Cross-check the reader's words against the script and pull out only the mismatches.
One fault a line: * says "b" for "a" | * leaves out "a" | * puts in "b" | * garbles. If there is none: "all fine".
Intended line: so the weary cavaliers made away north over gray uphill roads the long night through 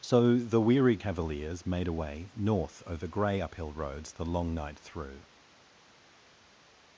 all fine